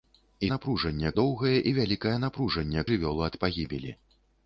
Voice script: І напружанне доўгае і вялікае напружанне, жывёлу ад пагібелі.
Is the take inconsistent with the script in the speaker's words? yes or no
no